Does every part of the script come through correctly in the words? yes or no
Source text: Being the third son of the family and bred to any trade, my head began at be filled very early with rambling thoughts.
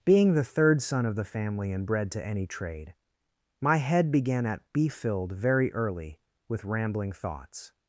yes